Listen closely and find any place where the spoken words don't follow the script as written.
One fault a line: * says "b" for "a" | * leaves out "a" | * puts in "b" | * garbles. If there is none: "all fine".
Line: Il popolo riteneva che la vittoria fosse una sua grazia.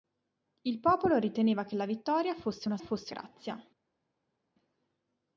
* says "fosse" for "sua"